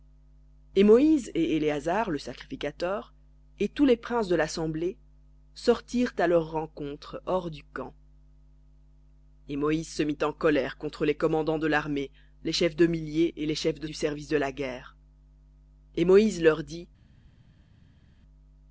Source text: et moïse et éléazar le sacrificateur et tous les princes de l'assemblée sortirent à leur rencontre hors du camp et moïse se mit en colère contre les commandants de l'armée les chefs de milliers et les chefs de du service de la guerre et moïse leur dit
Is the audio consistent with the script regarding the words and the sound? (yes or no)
yes